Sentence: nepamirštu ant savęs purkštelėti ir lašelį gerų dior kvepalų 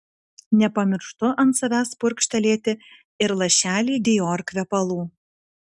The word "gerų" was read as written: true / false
false